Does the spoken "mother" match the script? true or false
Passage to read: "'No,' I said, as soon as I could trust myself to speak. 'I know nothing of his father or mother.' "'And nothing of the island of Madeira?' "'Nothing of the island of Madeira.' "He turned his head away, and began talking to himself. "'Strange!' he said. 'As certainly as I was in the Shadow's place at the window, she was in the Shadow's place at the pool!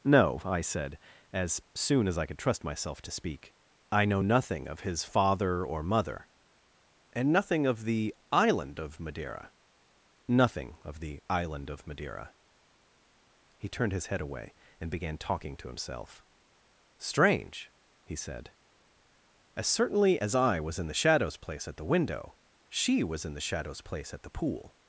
true